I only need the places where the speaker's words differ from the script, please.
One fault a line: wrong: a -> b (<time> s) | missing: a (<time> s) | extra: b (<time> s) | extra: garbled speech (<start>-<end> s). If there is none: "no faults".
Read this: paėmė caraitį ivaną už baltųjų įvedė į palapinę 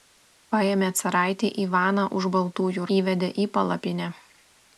no faults